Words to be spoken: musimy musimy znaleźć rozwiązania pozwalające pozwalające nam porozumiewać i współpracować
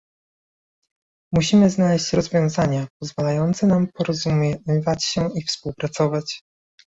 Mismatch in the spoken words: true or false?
true